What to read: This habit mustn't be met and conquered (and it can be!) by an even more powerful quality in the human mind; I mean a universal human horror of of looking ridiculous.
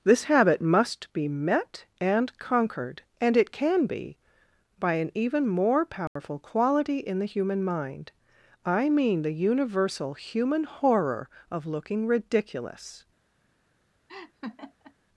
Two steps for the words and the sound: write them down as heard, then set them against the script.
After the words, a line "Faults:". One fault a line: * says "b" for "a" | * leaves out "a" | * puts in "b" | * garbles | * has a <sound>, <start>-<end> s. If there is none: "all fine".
This habit must be met and conquered (and it can be!) by an even more powerful quality in the human mind; I mean the universal human horror of looking ridiculous.
Faults:
* says "must" for "mustn't"
* has a dropout, 6.1-6.2 s
* says "the" for "a"
* leaves out "of"
* has a laugh, 14.1-14.9 s